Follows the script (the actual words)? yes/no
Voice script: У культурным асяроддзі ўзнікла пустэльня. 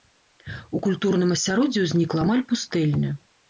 no